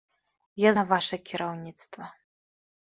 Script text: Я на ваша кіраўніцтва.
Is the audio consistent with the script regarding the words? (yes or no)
yes